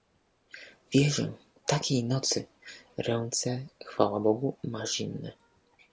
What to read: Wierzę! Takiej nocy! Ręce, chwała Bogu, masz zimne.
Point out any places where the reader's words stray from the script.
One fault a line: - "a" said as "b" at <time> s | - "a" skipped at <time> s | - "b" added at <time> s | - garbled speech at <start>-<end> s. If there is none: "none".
none